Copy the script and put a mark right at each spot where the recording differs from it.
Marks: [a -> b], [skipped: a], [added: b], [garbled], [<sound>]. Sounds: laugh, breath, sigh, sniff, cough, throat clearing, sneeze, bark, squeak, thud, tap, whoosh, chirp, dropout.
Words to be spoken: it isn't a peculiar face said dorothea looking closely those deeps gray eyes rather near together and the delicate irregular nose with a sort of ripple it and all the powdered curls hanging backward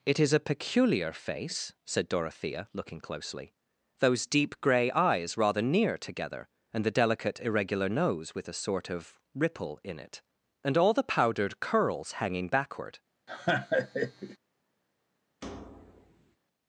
it [isn't -> is] a peculiar face said dorothea looking closely those [deeps -> deep] gray eyes rather near together and the delicate irregular nose with a sort of ripple [added: in] it and all the powdered curls hanging backward [laugh] [thud]